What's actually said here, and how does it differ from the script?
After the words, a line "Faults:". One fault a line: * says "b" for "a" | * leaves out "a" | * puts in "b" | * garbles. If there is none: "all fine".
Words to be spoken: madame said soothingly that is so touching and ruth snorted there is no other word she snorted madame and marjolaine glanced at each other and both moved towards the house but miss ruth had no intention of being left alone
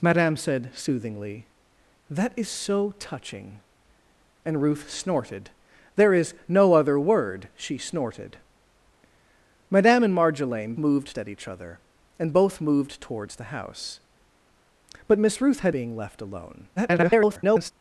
madame said soothingly that is so touching and ruth snorted there is no other word she snorted madame and marjolaine moved at each other and both moved towards the house but miss ruth had being left alone [garbled]
Faults:
* says "moved" for "glanced"
* leaves out "no intention of"
* garbles